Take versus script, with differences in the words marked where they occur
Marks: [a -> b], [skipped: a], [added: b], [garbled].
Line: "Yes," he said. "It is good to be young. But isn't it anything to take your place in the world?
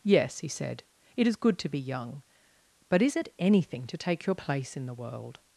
"Yes," he said. "It is good to be young. But [isn't -> is] it anything to take your place in the world?